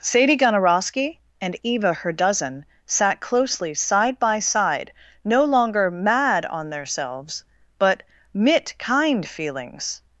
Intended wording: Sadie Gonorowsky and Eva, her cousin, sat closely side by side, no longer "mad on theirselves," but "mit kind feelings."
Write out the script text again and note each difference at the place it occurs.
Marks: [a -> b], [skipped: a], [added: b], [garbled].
Sadie Gonorowsky and Eva, her [cousin, -> dozen] sat closely side by side, no longer "mad on theirselves," but "mit kind feelings."